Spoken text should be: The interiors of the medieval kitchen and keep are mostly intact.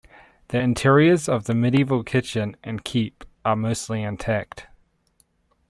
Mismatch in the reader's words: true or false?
false